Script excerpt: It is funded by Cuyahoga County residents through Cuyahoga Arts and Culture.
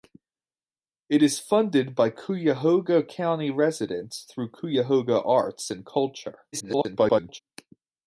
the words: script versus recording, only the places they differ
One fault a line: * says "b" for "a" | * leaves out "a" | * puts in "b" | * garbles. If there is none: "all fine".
* garbles